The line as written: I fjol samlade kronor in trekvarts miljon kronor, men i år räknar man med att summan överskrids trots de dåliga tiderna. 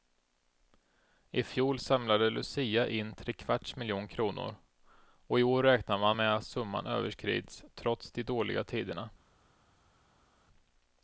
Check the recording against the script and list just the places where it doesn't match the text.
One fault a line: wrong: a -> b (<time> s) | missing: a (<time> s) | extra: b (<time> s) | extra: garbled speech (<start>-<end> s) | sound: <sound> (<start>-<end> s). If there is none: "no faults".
wrong: kronor -> lucia (2.3 s)
wrong: men -> och (5.3 s)